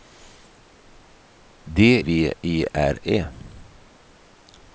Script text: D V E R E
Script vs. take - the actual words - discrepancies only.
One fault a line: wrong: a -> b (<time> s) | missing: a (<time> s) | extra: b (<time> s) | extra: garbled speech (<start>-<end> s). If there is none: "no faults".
no faults